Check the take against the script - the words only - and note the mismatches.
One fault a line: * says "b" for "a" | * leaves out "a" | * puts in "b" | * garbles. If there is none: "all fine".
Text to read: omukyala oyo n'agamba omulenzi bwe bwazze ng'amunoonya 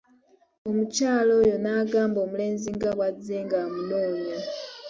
* says "nga" for "bwe"